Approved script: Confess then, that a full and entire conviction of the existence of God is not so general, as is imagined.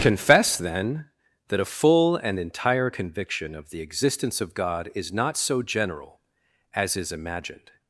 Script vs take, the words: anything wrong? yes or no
no